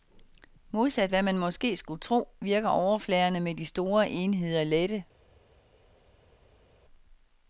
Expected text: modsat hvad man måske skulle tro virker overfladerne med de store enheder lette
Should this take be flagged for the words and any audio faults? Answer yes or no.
no